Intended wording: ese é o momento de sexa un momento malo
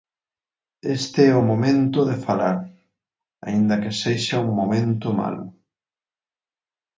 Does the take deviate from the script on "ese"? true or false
true